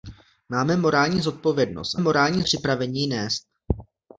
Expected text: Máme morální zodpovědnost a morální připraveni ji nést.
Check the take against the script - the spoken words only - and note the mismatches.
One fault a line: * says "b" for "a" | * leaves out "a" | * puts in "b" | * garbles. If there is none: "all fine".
all fine